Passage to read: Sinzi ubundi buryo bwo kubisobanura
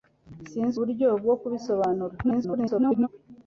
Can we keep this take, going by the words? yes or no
no